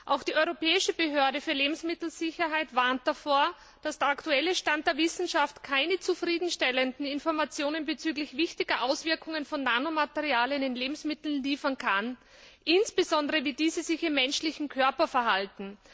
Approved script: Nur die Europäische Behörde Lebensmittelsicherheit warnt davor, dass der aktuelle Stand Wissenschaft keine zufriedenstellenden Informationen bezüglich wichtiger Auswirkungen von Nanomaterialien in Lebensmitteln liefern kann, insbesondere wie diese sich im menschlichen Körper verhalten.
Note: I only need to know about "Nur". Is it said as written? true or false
false